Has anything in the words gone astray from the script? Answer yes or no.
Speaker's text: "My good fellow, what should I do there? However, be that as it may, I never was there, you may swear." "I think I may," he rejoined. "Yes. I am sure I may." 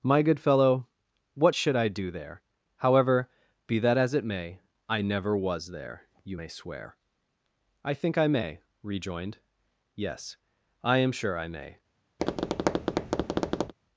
yes